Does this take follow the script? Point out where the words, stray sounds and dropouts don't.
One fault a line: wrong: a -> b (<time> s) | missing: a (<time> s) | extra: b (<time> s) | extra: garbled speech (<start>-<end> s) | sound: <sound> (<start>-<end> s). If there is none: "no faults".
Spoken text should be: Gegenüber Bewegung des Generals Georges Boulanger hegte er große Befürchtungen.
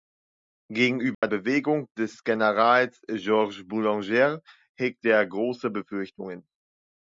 sound: dropout (1.1-1.2 s)